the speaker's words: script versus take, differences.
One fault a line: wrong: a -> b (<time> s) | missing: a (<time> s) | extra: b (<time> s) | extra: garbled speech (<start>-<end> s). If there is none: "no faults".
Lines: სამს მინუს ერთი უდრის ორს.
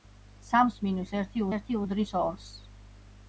extra: ერთი (1.6 s)